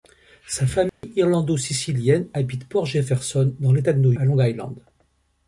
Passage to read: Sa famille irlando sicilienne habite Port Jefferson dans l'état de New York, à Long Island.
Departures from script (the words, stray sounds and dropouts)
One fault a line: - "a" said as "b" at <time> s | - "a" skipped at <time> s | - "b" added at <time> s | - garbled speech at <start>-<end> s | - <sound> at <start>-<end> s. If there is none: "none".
- dropout at 0.9-1.0 s
- "York" skipped at 4.1 s